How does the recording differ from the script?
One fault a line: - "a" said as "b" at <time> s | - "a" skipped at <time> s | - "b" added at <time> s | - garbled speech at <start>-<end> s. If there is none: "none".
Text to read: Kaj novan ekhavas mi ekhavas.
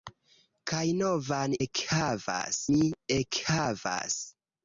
none